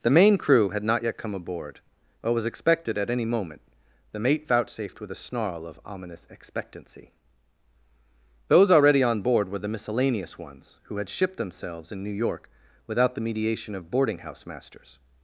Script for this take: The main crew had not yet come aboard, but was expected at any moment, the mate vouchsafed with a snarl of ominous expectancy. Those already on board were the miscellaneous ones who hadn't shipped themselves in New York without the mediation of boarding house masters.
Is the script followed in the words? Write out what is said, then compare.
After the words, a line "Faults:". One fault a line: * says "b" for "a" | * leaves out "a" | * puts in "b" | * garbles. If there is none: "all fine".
The main crew had not yet come aboard, but was expected at any moment, the mate vouchsafed with a snarl of ominous expectancy. Those already on board were the miscellaneous ones who had shipped themselves in New York without the mediation of boarding house masters.
Faults:
* says "had" for "hadn't"